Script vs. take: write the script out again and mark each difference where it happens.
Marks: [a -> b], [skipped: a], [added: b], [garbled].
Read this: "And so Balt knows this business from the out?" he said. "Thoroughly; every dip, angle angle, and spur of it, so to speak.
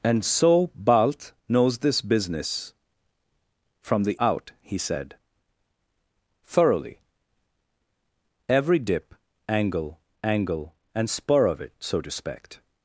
"And so Balt knows this business from the out?" he said. "Thoroughly; every dip, angle angle, and spur of it, so to speak.